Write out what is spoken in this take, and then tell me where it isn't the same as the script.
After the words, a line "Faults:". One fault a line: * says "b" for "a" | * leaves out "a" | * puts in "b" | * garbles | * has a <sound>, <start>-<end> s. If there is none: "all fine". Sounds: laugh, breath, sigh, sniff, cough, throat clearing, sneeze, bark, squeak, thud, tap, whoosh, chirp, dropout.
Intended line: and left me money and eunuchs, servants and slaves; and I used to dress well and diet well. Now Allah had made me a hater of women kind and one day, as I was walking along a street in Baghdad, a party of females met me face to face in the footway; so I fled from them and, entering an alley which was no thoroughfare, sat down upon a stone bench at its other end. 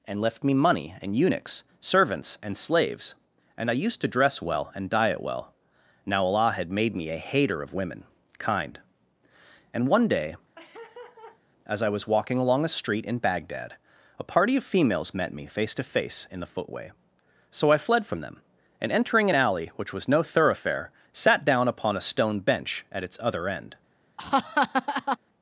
and left me money and eunuchs, servants and slaves; and I used to dress well and diet well. Now Allah had made me a hater of women kind and one day, as I was walking along a street in Baghdad, a party of females met me face to face in the footway; so I fled from them and, entering an alley which was no thoroughfare, sat down upon a stone bench at its other end.
Faults:
* has a laugh, 10.6-11.4 s
* has a laugh, 24.2-25.2 s